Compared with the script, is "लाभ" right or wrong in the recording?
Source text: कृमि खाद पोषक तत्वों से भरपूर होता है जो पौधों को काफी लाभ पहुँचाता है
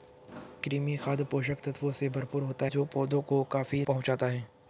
wrong